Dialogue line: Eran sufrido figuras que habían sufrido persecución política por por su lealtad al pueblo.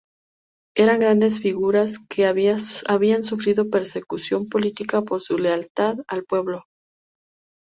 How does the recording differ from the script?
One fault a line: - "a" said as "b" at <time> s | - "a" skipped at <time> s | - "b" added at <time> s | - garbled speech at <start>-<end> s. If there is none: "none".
- "sufrido" said as "grandes" at 1.0 s
- "por" skipped at 5.2 s